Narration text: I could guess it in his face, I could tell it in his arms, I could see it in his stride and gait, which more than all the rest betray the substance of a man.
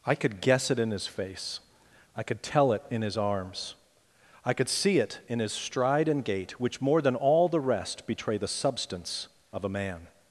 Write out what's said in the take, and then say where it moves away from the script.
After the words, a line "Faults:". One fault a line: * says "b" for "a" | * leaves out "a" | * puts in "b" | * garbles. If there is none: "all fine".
I could guess it in his face, I could tell it in his arms, I could see it in his stride and gait, which more than all the rest betray the substance of a man.
Faults:
all fine